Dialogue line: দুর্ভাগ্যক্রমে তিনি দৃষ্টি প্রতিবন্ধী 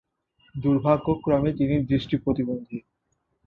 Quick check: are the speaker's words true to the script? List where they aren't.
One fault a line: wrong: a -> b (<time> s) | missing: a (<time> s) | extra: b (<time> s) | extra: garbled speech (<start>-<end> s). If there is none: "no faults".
no faults